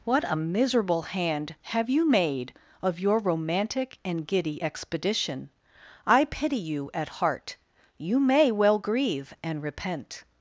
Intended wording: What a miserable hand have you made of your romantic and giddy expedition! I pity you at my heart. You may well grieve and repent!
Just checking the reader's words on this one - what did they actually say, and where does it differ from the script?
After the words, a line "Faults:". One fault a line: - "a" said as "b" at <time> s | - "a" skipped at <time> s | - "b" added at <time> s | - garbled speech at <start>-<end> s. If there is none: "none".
What a miserable hand have you made of your romantic and giddy expedition! I pity you at heart. You may well grieve and repent!
Faults:
- "my" skipped at 7.1 s